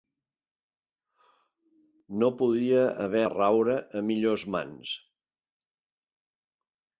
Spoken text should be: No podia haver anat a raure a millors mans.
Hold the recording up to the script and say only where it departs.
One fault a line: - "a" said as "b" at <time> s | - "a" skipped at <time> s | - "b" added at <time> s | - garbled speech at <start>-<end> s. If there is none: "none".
- "anat" skipped at 3.2 s